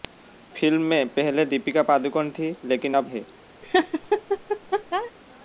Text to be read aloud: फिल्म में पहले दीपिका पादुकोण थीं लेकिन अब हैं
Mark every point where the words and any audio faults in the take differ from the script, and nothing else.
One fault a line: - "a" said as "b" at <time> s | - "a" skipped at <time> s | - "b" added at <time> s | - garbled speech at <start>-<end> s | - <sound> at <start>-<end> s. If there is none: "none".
- laugh at 3.6-5.1 s